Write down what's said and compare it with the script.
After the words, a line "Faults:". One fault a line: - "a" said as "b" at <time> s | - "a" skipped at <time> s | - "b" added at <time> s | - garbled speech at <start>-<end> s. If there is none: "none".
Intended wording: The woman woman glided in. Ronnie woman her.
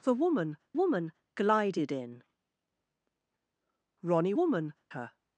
The woman woman glided in. Ronnie woman her.
Faults:
none